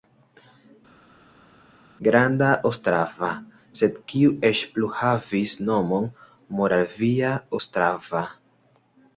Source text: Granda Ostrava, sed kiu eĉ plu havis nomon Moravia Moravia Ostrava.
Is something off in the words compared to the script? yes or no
yes